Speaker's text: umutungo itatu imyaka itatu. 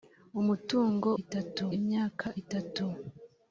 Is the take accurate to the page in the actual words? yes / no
yes